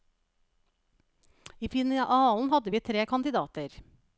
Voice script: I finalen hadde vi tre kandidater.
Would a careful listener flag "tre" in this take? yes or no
no